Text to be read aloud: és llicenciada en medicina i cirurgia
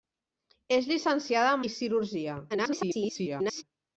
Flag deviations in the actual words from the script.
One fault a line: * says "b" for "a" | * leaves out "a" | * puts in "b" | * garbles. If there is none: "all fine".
* leaves out "medicina"
* garbles